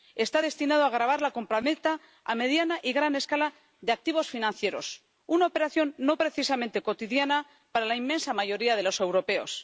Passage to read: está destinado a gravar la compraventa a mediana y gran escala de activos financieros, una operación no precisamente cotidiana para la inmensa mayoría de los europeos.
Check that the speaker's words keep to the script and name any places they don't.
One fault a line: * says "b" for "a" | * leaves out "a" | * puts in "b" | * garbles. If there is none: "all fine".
all fine